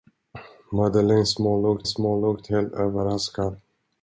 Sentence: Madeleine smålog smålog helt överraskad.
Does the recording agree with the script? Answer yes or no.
yes